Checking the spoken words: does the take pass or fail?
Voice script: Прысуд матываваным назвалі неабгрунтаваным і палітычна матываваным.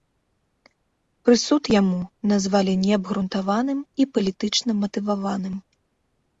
fail